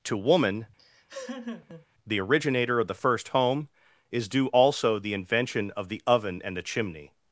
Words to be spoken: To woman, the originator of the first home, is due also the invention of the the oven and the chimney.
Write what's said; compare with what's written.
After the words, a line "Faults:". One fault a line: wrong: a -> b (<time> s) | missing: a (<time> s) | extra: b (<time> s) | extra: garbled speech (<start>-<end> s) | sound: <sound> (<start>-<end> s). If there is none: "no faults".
To woman, the originator of the first home, is due also the invention of the oven and the chimney.
Faults:
sound: laugh (0.8-1.9 s)
missing: the (6.0 s)